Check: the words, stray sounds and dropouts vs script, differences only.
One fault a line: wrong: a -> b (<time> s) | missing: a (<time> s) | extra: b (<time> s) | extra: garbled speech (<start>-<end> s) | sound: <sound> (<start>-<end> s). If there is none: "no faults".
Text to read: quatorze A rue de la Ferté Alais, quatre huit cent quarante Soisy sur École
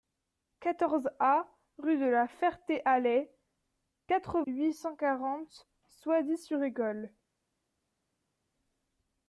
no faults